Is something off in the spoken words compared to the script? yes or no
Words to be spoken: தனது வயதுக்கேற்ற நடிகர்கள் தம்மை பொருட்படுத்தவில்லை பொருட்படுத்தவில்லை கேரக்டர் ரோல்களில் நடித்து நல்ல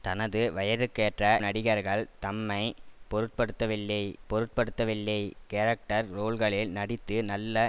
no